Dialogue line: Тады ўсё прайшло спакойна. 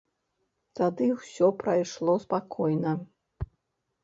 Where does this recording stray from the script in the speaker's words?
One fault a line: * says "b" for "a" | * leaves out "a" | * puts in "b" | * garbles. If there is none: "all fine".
all fine